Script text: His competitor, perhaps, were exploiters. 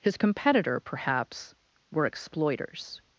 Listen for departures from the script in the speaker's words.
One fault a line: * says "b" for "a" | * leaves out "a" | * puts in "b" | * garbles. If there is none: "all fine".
all fine